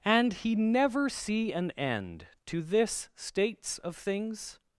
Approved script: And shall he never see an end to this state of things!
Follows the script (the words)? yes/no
no